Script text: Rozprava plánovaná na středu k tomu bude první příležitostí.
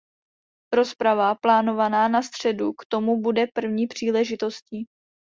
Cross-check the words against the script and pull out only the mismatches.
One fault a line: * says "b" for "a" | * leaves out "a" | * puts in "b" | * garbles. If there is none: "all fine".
all fine